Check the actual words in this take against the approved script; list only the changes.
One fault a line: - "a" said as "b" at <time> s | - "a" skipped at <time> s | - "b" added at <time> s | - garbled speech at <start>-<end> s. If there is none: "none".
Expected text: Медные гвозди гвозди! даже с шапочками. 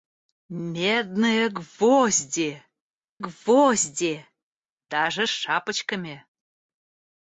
none